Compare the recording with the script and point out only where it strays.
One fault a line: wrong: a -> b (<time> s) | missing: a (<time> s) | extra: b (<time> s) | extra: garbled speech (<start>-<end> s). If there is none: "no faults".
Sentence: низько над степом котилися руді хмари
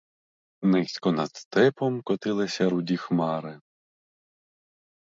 no faults